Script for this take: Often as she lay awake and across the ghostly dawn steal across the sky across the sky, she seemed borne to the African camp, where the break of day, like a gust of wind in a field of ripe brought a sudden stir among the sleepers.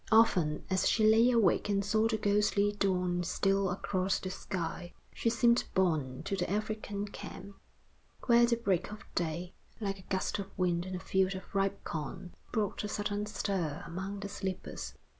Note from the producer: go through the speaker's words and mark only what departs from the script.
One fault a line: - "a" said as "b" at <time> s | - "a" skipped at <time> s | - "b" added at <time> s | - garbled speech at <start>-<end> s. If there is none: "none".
- "across" said as "saw" at 1.9 s
- "across the sky" skipped at 4.9 s
- "corn" added at 11.8 s